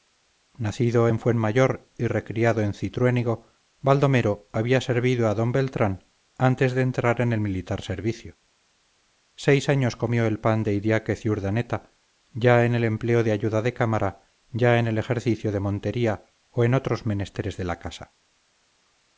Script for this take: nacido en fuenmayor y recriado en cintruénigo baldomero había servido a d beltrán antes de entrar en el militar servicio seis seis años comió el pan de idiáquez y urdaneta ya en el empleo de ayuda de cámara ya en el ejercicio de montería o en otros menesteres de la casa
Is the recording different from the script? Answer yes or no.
yes